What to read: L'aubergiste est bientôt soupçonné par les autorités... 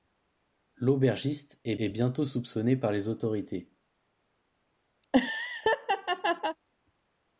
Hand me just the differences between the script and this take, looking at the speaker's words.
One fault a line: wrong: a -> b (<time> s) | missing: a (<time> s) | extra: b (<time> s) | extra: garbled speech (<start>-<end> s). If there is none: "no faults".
extra: est (1.8 s)